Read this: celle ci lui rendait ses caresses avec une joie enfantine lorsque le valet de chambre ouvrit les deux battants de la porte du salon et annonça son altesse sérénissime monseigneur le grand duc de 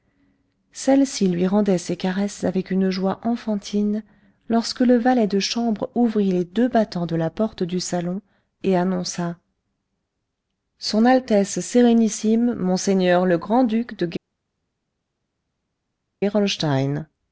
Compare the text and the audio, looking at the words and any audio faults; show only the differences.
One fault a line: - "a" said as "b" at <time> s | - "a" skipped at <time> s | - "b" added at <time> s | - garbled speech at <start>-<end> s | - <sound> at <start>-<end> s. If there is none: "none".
none